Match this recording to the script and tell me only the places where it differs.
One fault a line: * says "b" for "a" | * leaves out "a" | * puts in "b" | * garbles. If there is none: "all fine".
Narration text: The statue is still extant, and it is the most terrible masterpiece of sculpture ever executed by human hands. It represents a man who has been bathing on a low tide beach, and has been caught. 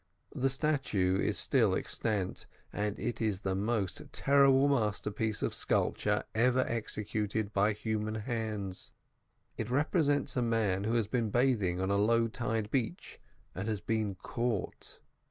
all fine